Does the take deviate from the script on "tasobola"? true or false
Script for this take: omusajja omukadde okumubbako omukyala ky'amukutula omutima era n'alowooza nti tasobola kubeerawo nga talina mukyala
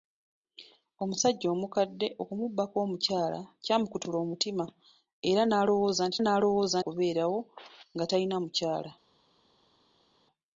true